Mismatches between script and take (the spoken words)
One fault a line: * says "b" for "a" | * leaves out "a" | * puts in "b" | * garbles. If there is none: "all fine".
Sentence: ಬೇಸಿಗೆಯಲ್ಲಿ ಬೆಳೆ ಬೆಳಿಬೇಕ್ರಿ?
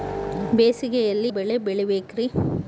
all fine